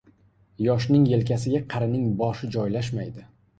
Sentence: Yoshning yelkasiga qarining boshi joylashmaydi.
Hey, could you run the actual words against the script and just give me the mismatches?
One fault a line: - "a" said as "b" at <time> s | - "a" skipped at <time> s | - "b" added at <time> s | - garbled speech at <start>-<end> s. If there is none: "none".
none